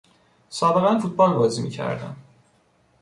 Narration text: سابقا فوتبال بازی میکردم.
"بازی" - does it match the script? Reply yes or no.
yes